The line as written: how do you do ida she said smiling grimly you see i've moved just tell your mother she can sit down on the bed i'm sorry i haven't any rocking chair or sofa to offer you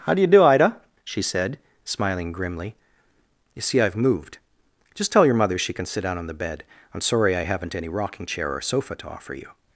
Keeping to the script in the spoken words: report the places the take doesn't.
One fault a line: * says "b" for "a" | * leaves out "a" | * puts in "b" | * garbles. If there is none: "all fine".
all fine